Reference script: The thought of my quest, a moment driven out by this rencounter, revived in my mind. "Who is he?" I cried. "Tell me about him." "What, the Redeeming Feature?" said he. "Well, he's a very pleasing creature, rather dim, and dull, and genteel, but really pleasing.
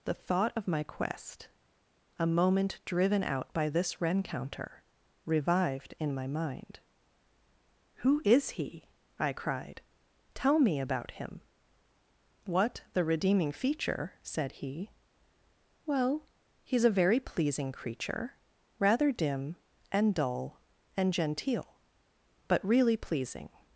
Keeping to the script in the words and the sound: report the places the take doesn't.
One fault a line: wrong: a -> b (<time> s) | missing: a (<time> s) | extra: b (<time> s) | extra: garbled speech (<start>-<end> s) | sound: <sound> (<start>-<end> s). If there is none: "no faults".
no faults